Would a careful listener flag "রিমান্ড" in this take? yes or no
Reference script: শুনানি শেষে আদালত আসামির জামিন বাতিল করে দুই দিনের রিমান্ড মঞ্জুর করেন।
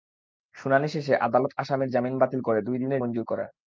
yes